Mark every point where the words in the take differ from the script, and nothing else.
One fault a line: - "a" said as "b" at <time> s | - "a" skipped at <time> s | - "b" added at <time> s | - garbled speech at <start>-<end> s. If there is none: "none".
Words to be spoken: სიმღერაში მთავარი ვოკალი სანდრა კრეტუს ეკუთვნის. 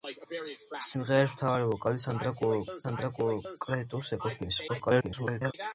- "სანდრა" added at 2.8 s
- garbled speech at 4.7-5.5 s